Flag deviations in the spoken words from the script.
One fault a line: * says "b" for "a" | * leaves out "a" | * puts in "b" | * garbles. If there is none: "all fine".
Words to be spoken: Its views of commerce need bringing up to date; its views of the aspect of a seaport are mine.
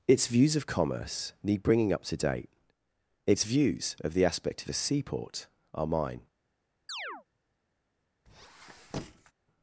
all fine